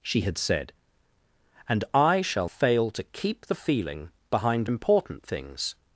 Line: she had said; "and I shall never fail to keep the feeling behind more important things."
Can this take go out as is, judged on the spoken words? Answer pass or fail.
fail